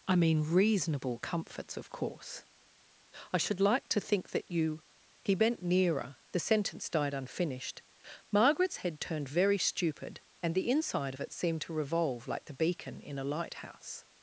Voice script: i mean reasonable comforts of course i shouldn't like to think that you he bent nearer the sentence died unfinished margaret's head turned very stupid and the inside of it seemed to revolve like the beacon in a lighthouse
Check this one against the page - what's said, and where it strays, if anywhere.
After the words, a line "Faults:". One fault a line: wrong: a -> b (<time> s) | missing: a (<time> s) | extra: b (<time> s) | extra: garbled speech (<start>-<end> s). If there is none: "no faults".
i mean reasonable comforts of course i should like to think that you he bent nearer the sentence died unfinished margaret's head turned very stupid and the inside of it seemed to revolve like the beacon in a lighthouse
Faults:
wrong: shouldn't -> should (3.4 s)